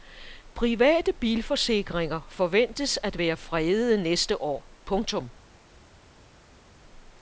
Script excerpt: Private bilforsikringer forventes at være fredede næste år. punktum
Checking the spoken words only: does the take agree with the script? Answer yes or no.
yes